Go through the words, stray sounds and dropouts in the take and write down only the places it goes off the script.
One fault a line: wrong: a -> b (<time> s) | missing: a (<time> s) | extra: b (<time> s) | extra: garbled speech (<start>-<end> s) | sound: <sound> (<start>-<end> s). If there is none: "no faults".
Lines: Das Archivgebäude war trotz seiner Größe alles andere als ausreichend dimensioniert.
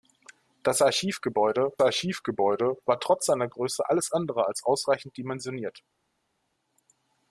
extra: Archivgebäude (1.8 s)